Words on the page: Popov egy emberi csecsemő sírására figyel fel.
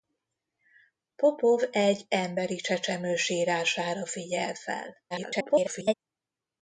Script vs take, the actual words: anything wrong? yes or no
yes